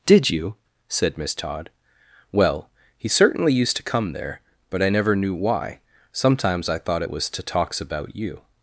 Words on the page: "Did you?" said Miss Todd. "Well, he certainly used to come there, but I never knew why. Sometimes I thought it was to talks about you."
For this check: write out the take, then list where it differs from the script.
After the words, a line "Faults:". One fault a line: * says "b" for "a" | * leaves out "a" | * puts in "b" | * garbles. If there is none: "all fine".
"Did you?" said Miss Todd. "Well, he certainly used to come there, but I never knew why. Sometimes I thought it was to talks about you."
Faults:
all fine